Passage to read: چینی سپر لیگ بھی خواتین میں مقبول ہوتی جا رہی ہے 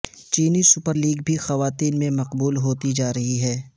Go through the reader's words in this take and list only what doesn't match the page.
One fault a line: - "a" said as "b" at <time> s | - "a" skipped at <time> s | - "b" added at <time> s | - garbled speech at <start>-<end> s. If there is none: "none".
none